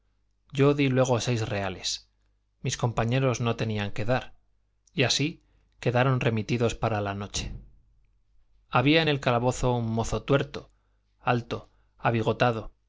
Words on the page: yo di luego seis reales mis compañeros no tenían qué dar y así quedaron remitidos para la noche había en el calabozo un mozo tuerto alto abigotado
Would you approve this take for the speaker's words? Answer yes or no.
yes